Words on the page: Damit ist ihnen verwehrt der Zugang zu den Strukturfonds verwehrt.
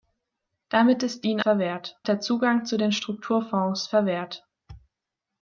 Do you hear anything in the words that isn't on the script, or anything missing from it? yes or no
no